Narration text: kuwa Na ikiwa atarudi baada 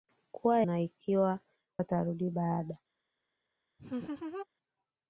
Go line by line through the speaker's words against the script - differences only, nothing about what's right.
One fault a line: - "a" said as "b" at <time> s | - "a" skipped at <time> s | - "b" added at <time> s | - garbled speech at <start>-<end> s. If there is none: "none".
none